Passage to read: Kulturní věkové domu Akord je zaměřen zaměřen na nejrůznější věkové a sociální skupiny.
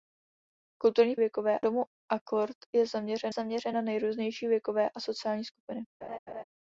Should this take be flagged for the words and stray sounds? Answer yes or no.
yes